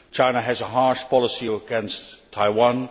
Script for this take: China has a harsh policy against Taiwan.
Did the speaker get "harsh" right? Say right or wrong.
right